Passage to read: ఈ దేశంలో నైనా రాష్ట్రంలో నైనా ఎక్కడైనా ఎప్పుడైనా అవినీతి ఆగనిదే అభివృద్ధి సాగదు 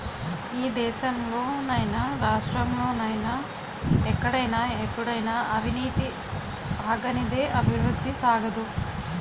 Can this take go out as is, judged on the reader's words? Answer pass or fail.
pass